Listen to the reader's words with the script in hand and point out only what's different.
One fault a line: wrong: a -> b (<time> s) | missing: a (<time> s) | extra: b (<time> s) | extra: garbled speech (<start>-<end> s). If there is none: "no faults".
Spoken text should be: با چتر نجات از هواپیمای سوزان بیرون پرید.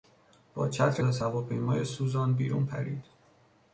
missing: نجات (1.0 s)